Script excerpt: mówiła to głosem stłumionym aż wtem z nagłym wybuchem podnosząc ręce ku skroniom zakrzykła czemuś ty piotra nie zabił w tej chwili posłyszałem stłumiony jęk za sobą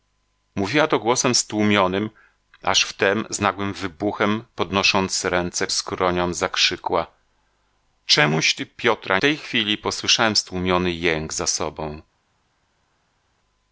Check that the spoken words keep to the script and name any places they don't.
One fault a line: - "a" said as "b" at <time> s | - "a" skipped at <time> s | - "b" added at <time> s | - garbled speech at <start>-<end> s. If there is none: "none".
- "ku" skipped at 5.7 s
- "nie zabił w" skipped at 9.2 s